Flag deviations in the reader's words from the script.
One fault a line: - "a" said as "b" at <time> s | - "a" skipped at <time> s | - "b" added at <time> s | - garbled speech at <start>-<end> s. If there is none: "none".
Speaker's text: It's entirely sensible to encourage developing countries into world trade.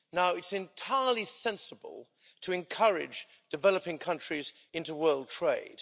none